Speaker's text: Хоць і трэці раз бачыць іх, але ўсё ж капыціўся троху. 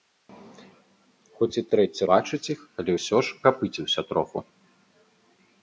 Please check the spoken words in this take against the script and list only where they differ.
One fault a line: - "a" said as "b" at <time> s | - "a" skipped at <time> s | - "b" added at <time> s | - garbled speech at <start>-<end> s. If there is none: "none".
- "раз" skipped at 2.0 s